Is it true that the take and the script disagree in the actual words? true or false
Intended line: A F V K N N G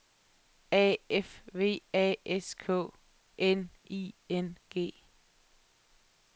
true